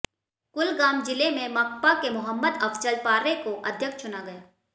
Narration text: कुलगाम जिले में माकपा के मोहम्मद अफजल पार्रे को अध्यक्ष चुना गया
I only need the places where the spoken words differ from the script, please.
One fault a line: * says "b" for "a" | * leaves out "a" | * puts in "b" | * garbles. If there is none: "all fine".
all fine